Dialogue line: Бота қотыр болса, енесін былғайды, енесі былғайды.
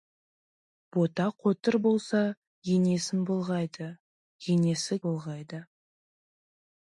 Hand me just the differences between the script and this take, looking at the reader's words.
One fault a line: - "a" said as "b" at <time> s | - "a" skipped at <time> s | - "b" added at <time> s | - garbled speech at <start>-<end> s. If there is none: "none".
none